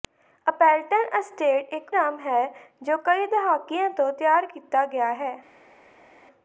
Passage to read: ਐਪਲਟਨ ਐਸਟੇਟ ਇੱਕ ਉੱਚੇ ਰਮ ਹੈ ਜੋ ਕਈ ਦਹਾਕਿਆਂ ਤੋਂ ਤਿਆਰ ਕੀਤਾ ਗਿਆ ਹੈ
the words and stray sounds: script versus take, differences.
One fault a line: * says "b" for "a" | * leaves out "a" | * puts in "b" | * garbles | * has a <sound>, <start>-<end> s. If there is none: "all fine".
* leaves out "ਉੱਚੇ"